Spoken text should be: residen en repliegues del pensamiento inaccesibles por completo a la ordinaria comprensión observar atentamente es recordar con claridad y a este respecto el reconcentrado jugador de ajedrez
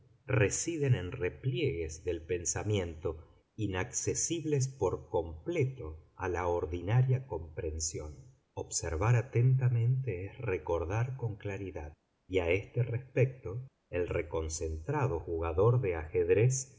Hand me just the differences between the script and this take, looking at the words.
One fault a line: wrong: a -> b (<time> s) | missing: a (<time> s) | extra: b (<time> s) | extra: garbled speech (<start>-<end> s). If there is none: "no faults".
no faults